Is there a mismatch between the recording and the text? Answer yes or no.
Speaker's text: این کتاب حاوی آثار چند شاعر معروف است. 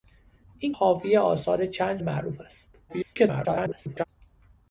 yes